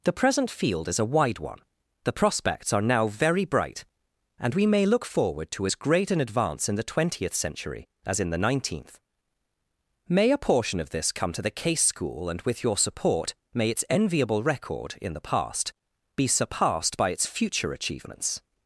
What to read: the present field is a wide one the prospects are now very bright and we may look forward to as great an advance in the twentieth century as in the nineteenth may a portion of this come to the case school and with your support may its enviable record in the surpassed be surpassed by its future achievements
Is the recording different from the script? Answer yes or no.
yes